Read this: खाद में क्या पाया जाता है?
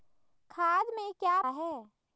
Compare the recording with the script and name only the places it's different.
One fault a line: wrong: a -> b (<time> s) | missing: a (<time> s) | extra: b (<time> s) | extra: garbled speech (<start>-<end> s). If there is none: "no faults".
missing: पाया जाता (1.4 s)